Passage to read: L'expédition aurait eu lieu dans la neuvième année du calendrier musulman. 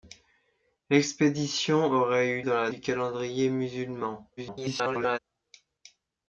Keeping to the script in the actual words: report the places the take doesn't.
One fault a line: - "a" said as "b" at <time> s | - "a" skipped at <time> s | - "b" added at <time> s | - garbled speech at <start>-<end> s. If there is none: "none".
- "lieu" skipped at 2.4 s
- "neuvième année" skipped at 2.7 s
- garbled speech at 4.4-5.2 s